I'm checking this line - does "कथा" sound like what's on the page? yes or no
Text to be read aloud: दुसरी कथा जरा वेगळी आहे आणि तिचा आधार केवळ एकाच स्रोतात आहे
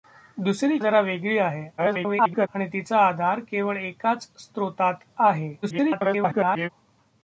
no